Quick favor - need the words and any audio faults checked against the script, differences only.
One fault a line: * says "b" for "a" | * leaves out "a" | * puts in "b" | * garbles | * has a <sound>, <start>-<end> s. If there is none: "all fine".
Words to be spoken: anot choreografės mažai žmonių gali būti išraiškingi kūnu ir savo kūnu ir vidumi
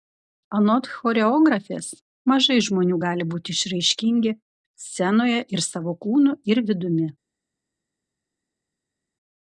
* says "scenoje" for "kūnu"